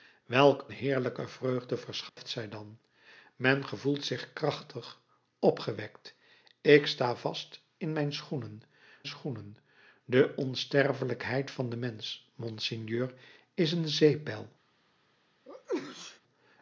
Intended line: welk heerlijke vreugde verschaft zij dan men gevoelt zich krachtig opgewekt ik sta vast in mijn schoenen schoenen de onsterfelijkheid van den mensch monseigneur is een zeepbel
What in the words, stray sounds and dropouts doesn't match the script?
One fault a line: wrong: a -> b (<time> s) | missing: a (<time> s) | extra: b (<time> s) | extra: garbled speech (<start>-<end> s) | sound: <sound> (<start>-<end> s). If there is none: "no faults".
sound: dropout (2.1-2.2 s)
sound: sneeze (15.5-16.2 s)